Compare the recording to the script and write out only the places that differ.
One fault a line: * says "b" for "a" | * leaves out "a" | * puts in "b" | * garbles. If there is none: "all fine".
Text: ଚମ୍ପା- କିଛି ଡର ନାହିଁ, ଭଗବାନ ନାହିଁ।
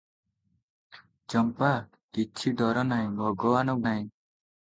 all fine